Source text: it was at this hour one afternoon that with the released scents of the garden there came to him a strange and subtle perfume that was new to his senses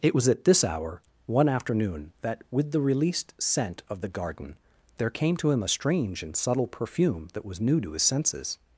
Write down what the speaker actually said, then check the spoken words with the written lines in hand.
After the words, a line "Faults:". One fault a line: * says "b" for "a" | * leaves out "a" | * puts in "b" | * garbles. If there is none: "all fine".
it was at this hour one afternoon that with the released scent of the garden there came to him a strange and subtle perfume that was new to his senses
Faults:
* says "scent" for "scents"